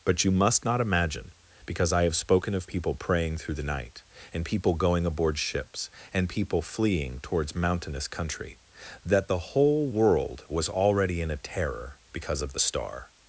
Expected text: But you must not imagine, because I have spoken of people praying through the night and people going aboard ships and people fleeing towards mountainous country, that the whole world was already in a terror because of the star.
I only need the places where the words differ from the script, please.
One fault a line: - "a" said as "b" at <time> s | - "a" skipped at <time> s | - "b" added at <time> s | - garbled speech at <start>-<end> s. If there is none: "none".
none